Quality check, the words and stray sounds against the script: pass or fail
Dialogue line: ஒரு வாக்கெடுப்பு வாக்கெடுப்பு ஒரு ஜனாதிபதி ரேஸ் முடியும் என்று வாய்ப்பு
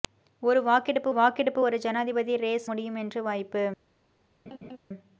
fail